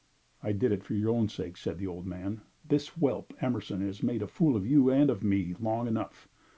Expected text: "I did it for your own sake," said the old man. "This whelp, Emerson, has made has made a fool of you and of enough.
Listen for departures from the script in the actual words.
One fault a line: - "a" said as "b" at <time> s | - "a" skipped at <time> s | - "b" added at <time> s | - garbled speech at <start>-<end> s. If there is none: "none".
- "has made" skipped at 4.2 s
- "me long" added at 5.2 s